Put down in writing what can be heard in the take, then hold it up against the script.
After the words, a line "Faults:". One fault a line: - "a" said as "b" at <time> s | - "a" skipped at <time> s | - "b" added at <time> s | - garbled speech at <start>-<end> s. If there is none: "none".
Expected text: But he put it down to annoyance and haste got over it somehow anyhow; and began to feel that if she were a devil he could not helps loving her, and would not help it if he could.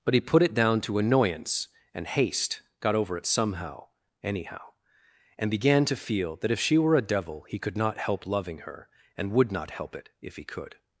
But he put it down to annoyance and haste got over it somehow anyhow; and began to feel that if she were a devil he could not help loving her, and would not help it if he could.
Faults:
- "helps" said as "help" at 8.0 s